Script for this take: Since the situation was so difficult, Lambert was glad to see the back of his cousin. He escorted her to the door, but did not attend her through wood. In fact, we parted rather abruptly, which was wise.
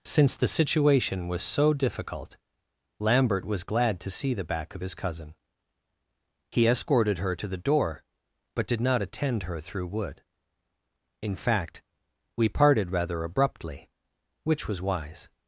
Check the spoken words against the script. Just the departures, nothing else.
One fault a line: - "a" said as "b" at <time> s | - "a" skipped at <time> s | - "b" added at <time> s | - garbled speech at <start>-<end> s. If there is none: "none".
none